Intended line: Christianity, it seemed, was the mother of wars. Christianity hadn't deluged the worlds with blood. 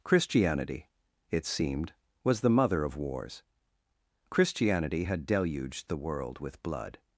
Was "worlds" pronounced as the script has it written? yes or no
no